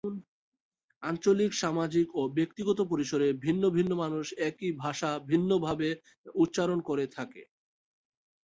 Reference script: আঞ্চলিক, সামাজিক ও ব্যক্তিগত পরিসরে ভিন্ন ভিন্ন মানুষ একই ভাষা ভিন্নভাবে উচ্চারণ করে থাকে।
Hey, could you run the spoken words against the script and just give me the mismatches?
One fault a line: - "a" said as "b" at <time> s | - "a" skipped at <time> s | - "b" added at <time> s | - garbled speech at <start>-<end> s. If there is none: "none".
none